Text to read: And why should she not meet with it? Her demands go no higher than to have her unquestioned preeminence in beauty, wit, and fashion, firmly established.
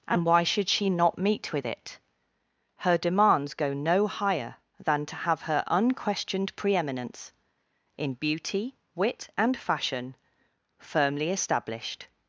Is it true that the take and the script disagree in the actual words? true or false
false